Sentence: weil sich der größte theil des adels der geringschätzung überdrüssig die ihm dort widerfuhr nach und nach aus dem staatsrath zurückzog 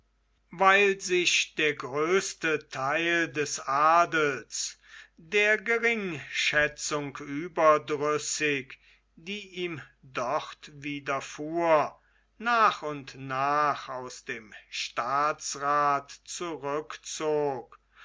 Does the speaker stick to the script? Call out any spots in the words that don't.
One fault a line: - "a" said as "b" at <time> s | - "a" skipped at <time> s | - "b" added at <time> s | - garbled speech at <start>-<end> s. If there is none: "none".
none